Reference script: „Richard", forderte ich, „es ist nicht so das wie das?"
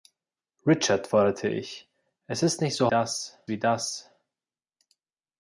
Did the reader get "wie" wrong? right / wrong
right